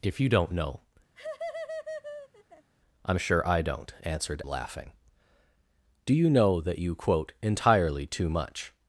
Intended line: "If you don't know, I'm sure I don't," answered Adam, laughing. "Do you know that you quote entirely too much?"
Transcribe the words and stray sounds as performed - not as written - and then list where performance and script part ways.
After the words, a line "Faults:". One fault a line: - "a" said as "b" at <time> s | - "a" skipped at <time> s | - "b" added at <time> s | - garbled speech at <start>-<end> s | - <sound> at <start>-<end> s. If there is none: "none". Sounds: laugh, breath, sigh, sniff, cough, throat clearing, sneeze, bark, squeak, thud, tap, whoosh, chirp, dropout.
"If you don't know, I'm sure I don't," answered Laughing. "Do you know that you quote entirely too much?"
Faults:
- laugh at 1.1-2.7 s
- "Adam" skipped at 4.4 s